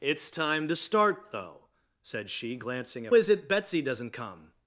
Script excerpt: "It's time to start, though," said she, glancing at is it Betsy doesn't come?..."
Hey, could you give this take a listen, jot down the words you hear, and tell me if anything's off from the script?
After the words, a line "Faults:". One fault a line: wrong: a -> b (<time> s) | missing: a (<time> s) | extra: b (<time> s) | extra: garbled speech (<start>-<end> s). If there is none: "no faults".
"It's time to start, though," said she, glancing at is it Betsy doesn't come?..."
Faults:
no faults